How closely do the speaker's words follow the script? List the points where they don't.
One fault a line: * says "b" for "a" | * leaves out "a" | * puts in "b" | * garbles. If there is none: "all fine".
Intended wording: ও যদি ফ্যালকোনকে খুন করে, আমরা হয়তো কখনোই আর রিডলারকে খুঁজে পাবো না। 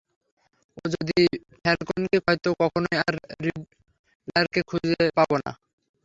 * leaves out "খুন করে আমরা"